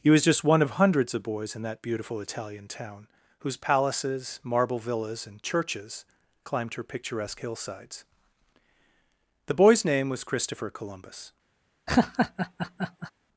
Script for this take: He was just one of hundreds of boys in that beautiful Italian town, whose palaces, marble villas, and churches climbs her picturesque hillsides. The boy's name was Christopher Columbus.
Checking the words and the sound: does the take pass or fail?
fail